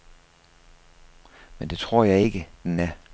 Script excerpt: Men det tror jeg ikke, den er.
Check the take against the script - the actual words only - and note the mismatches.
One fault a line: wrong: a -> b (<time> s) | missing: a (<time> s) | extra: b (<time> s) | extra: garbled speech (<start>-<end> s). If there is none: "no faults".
no faults